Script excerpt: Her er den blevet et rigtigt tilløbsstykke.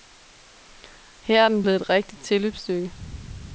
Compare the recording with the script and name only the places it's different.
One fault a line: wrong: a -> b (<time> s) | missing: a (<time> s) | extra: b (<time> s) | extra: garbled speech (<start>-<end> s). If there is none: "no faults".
no faults